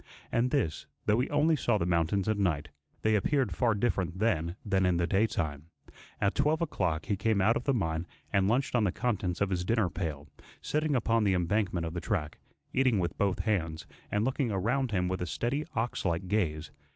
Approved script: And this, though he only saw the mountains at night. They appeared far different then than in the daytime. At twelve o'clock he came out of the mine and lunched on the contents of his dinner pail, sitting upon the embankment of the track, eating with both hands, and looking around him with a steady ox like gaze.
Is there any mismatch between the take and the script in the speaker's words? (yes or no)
no